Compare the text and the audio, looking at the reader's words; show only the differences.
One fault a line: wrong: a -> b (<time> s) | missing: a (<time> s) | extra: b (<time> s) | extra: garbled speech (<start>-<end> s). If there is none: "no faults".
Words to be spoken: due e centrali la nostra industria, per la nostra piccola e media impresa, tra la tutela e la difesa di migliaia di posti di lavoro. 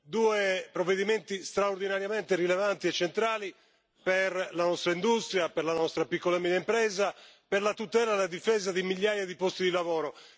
extra: provvedimenti straordinariamente rilevanti (0.7 s)
extra: per (4.0 s)
wrong: tra -> per (7.5 s)